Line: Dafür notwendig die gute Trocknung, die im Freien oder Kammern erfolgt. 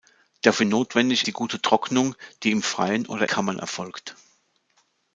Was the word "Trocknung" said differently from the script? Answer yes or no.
no